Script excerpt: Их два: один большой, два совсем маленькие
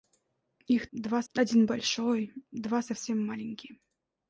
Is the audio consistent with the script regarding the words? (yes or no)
yes